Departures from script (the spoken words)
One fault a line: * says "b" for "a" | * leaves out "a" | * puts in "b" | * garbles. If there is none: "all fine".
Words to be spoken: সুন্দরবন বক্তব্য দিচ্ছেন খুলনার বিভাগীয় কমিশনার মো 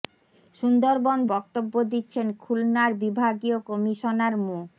all fine